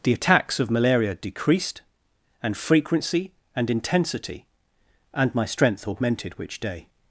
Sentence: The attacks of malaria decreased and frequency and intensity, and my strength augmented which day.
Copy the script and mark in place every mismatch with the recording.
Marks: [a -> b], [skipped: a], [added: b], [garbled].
The attacks of malaria decreased and frequency and intensity, and my strength augmented which day.